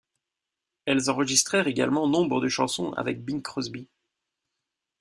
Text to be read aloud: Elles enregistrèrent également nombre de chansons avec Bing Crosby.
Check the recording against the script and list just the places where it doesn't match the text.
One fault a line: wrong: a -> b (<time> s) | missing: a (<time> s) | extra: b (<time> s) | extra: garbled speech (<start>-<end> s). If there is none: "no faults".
no faults